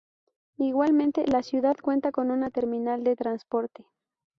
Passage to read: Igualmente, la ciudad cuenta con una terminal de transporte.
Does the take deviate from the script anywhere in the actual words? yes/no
no